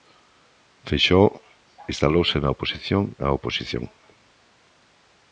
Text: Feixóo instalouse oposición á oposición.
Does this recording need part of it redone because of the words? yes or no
yes